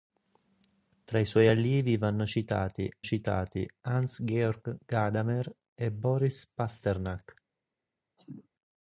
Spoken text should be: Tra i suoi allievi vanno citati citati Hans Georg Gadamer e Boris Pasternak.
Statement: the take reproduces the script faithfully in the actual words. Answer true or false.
true